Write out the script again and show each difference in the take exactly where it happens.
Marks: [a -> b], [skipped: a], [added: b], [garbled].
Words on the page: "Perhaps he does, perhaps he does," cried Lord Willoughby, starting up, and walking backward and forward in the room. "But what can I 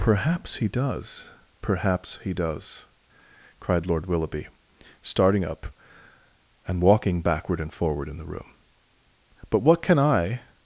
"Perhaps he does, perhaps he does," cried Lord Willoughby, starting up, and walking backward and forward in the room. "But what can I